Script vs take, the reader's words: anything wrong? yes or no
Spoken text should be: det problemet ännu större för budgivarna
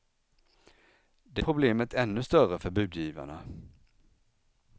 no